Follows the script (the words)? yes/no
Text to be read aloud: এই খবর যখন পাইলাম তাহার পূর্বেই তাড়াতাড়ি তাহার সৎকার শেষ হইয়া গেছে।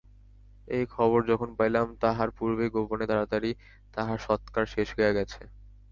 no